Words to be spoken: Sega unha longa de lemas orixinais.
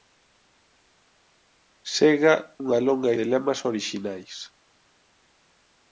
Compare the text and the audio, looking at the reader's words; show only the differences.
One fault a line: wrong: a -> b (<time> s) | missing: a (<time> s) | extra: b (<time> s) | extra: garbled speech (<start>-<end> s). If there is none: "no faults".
no faults